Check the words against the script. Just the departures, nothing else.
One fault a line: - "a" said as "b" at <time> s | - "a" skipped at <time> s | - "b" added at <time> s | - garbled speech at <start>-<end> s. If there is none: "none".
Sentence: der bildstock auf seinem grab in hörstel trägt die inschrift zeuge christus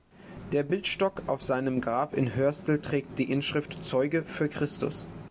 - "für" added at 4.2 s